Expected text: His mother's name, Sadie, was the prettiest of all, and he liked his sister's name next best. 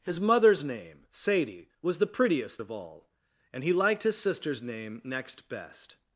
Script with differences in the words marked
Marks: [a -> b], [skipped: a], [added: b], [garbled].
His mother's name, Sadie, was the prettiest of all, and he liked his sister's name next best.